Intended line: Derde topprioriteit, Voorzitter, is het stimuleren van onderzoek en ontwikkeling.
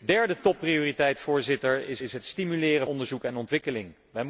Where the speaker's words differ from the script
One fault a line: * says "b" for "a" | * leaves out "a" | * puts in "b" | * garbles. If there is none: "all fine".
* puts in "is"
* leaves out "van"